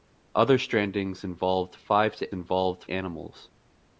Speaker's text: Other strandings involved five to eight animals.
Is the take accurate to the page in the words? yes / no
no